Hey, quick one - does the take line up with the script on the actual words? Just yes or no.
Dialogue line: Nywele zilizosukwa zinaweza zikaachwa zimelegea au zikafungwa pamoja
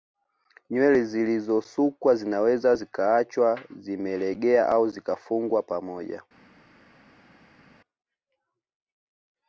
yes